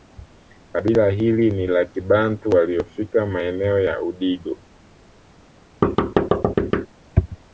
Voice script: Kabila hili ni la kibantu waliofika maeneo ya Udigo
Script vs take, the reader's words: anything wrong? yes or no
no